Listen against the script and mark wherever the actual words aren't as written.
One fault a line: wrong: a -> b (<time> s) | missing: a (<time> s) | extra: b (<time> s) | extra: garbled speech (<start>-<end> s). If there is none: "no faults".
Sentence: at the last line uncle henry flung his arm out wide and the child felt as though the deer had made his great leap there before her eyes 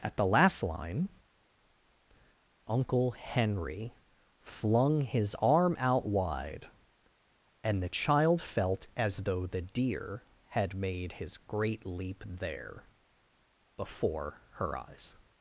no faults